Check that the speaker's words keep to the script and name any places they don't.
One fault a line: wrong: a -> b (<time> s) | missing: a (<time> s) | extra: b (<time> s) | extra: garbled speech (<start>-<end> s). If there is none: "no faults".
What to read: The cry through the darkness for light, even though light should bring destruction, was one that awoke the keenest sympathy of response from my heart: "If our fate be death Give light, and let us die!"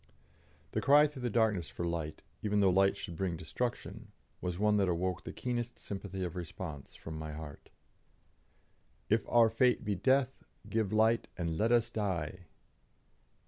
no faults